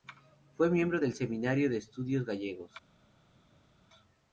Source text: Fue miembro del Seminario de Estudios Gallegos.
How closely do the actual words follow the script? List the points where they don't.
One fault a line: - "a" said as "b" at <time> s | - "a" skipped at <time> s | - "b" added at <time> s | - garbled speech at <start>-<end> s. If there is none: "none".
none